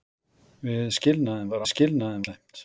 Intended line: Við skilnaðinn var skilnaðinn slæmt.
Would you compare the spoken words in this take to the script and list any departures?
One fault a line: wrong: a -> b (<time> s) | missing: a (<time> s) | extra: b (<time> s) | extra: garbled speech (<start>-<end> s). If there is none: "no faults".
no faults